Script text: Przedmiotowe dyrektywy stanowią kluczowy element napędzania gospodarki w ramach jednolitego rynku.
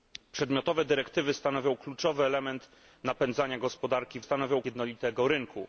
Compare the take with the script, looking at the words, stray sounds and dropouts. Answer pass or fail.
fail